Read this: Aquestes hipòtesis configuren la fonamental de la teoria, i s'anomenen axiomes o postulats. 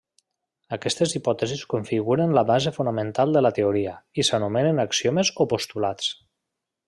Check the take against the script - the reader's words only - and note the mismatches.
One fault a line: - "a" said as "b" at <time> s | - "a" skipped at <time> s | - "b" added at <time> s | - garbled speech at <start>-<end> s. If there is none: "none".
- "base" added at 2.5 s